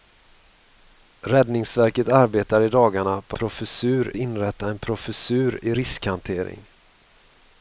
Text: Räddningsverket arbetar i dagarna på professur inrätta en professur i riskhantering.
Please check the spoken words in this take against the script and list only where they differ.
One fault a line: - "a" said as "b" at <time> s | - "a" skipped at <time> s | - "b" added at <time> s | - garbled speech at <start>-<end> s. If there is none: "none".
none